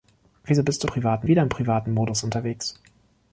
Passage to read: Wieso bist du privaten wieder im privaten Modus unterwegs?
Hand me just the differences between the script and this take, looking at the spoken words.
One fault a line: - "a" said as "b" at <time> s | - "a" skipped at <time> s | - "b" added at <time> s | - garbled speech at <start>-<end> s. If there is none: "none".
none